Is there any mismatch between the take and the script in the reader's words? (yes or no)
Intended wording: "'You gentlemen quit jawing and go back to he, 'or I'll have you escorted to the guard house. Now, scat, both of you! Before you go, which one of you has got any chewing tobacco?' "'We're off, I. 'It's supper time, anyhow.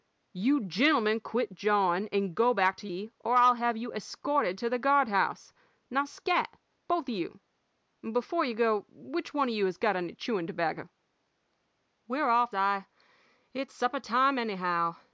no